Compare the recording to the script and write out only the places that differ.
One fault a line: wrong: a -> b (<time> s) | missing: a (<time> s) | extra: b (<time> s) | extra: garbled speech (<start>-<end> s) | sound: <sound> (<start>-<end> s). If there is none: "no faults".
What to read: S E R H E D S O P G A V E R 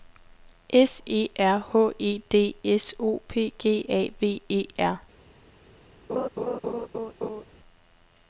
sound: laugh (6.1-7.5 s)